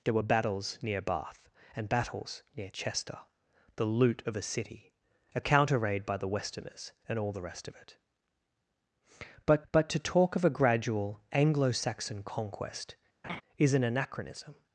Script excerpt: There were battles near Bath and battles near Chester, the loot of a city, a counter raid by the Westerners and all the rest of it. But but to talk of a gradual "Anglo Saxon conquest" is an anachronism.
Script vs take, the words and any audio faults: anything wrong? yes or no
yes